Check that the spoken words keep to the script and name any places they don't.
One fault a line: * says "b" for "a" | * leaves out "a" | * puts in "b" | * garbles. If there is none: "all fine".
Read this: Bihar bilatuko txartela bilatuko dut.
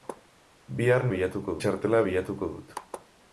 all fine